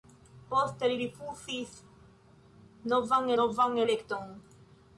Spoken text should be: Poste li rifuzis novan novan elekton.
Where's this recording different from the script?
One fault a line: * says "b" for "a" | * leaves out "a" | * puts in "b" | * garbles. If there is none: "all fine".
all fine